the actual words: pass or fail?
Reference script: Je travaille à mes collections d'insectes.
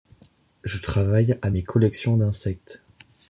pass